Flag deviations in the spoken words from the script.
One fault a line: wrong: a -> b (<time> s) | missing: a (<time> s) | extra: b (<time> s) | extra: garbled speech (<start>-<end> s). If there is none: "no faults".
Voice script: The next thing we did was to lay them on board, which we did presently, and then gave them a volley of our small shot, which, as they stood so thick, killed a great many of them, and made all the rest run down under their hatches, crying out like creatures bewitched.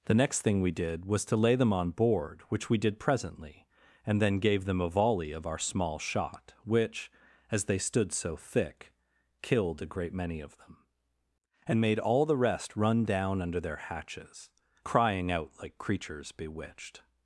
no faults